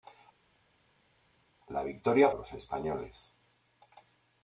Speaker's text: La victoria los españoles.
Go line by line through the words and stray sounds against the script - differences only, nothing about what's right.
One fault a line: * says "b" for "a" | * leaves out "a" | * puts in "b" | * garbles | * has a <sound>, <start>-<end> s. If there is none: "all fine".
all fine